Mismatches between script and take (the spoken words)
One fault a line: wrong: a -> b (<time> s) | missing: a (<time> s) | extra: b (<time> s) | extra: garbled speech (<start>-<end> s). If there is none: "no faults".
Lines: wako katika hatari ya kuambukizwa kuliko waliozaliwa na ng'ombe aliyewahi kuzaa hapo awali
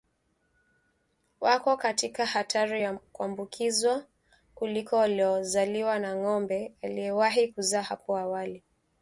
no faults